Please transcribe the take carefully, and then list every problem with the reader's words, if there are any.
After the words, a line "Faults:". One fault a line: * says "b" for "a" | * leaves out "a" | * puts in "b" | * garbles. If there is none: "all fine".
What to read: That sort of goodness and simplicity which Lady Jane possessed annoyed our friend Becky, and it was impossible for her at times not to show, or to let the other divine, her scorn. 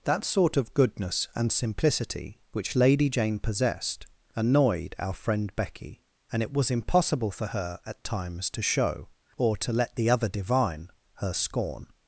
That sort of goodness and simplicity which Lady Jane possessed annoyed our friend Becky, and it was impossible for her at times to show, or to let the other divine, her scorn.
Faults:
* leaves out "not"